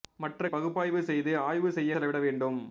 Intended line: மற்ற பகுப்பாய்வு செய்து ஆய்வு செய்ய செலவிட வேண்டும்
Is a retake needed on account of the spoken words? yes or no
no